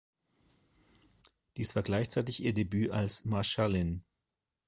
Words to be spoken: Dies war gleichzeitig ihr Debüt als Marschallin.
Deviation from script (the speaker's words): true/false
false